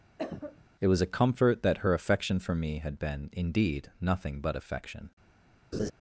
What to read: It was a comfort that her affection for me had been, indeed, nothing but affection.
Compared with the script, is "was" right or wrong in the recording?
right